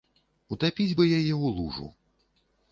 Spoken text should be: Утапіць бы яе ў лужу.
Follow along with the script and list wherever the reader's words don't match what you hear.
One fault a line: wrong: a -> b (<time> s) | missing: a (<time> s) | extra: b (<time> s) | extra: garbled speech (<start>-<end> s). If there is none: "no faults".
no faults